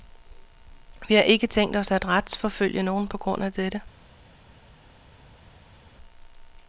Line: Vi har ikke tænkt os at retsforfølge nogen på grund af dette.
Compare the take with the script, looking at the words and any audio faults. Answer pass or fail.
pass